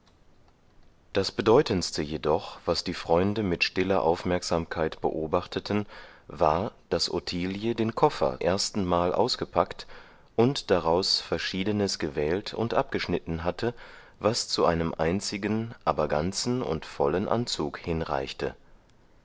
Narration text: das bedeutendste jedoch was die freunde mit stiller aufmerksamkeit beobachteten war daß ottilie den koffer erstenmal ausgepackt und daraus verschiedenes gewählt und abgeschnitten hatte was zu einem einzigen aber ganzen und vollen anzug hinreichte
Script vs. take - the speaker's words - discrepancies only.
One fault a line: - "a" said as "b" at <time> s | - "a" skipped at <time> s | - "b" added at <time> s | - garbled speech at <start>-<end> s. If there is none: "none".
none